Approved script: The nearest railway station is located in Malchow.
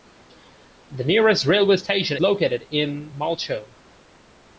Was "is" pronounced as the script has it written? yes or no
no